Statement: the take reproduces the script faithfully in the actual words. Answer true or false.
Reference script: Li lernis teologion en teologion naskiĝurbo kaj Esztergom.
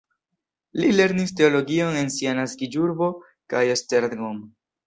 false